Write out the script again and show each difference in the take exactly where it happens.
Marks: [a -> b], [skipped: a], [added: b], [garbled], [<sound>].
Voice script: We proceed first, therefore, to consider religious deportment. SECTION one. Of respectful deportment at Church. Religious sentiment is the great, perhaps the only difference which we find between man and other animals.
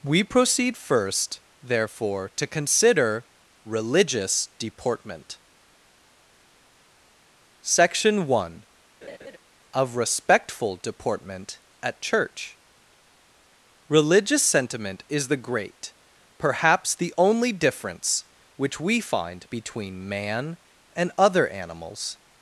We proceed first, therefore, to consider religious deportment. SECTION one. [laugh] Of respectful deportment at Church. Religious sentiment is the great, perhaps the only difference which we find between man and other animals.